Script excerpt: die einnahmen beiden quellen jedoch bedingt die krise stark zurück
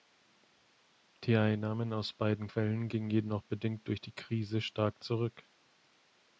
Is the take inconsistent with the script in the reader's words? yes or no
yes